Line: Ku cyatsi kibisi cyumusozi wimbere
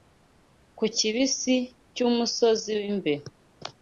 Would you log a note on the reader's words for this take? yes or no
yes